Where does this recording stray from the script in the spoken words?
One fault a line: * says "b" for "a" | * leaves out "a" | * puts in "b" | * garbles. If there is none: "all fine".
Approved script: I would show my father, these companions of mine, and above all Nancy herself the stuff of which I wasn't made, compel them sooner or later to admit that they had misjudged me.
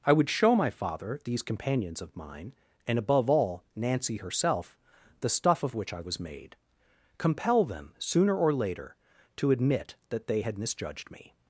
* says "was" for "wasn't"